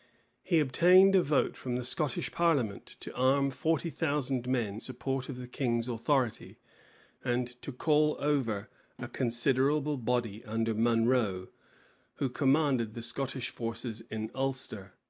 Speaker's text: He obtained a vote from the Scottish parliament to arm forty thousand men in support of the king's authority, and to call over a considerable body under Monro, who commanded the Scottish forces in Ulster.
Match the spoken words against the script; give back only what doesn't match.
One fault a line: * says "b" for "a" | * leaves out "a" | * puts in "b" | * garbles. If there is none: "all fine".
* leaves out "in"